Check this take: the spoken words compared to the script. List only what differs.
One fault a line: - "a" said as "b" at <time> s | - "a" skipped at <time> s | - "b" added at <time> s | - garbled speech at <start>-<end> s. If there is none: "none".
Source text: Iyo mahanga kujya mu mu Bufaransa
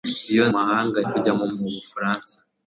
none